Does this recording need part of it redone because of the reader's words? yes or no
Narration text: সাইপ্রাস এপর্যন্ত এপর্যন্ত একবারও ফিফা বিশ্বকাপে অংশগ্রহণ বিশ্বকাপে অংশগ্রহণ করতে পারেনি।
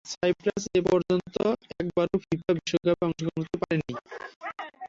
yes